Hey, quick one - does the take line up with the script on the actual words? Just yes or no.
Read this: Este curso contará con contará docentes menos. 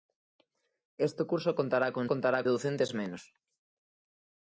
yes